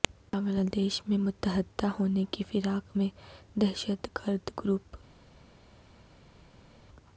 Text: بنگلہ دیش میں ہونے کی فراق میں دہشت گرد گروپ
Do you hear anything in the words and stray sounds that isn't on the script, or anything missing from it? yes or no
yes